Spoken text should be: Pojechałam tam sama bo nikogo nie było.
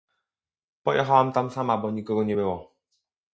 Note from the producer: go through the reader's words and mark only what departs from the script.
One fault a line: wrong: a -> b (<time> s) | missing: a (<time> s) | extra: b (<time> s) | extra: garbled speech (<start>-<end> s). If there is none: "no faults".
no faults